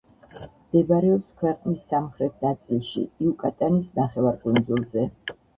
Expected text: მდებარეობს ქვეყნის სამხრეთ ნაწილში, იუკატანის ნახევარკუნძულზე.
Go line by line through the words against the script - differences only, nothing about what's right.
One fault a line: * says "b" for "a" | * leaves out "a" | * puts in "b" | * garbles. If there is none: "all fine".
all fine